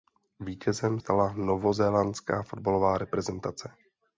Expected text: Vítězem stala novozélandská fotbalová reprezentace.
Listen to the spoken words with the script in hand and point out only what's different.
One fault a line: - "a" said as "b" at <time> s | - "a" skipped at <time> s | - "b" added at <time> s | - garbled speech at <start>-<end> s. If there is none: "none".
none